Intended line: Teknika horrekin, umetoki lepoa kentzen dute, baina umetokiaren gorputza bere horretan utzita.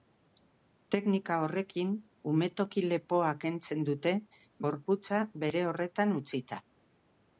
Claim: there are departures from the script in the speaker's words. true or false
true